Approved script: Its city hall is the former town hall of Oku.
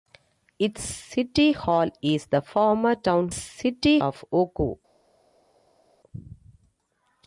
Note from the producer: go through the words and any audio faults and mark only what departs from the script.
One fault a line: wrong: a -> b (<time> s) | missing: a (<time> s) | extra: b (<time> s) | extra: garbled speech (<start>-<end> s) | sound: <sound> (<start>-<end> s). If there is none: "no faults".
wrong: hall -> city (3.3 s)